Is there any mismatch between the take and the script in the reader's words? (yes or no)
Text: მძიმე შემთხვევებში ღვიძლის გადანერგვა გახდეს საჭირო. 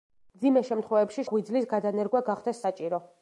no